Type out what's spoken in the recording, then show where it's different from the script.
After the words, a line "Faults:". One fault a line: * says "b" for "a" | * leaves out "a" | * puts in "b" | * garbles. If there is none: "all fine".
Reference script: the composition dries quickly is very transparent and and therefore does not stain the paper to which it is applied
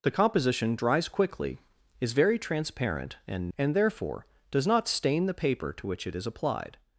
the composition dries quickly is very transparent and and therefore does not stain the paper to which it is applied
Faults:
all fine